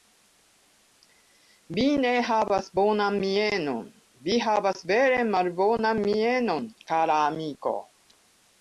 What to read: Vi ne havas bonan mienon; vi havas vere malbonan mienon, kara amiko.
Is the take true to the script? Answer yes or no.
yes